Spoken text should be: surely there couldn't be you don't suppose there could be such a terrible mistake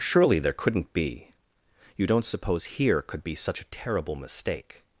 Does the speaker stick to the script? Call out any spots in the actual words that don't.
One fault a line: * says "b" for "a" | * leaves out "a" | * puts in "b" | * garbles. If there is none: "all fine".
* says "here" for "there"